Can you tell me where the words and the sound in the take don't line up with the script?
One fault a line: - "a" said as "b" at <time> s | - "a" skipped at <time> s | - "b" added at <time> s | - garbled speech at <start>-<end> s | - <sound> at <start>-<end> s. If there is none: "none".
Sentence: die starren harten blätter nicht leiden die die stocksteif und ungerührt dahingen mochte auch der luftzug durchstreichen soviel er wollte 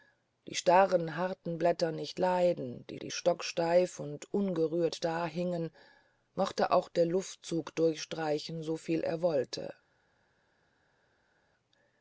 none